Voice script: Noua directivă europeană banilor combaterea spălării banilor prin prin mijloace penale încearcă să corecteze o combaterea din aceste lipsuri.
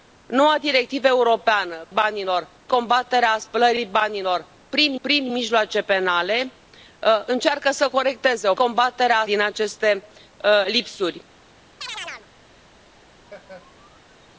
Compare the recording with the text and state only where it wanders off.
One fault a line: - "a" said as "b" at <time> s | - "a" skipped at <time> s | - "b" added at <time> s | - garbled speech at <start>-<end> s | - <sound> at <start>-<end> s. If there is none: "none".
- chirp at 11.8-12.3 s
- laugh at 13.2-14.3 s